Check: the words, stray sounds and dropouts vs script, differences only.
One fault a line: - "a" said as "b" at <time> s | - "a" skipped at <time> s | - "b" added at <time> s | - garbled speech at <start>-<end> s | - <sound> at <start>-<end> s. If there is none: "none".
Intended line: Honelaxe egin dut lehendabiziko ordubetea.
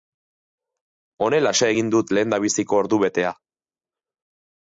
none